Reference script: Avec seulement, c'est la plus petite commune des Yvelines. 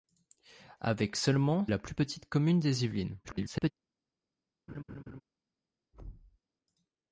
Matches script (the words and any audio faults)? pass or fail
fail